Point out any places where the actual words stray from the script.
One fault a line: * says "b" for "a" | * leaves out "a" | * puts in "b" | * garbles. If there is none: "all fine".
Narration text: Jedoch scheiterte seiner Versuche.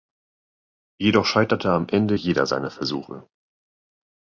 * puts in "am Ende jeder"